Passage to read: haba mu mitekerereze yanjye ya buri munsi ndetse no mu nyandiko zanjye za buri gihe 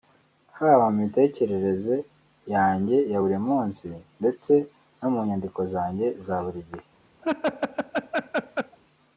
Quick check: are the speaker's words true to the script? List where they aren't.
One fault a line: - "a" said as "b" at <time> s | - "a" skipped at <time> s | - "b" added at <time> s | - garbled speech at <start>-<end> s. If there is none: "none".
none